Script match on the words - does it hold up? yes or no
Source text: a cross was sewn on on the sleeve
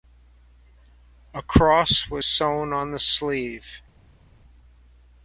no